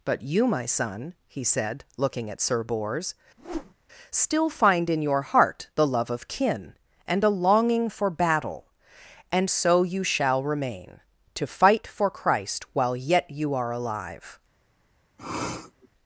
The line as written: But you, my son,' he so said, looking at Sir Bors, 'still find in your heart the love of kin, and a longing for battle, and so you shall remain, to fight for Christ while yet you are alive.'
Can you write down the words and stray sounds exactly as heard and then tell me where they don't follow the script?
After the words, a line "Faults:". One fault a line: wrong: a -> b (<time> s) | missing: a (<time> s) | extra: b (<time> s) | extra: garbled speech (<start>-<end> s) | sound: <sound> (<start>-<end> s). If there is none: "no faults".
But you, my son,' he said, looking at Sir Bors, 'still find in your heart the love of kin, and a longing for battle, and so you shall remain, to fight for Christ while yet you are alive.'
Faults:
missing: so (1.4 s)
sound: whoosh (3.4-3.7 s)
sound: sniff (15.2-15.9 s)